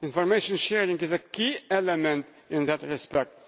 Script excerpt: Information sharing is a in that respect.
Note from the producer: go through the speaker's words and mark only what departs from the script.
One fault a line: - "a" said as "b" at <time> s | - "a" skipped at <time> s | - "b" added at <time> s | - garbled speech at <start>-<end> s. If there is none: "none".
- "key element" added at 1.2 s